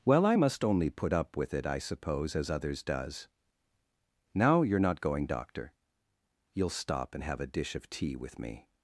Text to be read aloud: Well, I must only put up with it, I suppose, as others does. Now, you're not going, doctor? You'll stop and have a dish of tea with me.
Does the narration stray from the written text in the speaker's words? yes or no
no